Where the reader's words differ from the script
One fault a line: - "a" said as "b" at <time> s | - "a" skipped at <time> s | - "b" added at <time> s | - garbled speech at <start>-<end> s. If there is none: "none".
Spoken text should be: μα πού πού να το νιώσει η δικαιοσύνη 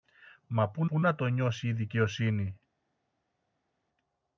none